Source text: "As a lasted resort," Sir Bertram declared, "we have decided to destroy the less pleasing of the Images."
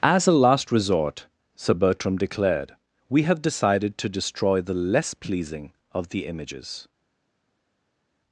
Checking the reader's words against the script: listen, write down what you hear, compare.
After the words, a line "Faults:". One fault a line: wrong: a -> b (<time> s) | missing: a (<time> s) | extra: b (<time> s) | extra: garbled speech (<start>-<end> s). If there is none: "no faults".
"As a last resort," Sir Bertram declared, "we have decided to destroy the less pleasing of the Images."
Faults:
wrong: lasted -> last (0.3 s)